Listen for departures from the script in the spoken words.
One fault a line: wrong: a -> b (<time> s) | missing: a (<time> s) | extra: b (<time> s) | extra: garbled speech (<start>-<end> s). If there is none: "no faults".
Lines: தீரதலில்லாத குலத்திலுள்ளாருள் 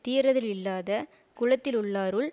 no faults